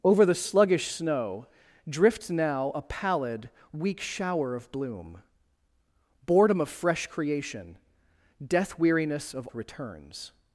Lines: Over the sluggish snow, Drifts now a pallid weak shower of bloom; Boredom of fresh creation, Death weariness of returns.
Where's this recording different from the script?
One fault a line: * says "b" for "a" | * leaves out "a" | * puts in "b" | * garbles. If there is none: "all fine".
all fine